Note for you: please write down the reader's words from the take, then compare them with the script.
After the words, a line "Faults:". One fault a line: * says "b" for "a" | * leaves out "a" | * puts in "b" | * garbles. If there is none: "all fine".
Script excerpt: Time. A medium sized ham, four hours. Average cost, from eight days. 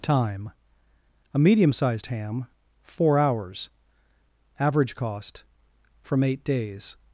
Time. A medium sized ham, four hours. Average cost, from eight days.
Faults:
all fine